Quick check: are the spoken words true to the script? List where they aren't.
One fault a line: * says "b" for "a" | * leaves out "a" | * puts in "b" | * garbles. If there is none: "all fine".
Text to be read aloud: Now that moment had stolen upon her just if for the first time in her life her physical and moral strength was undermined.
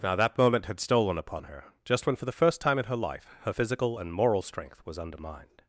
* says "when" for "if"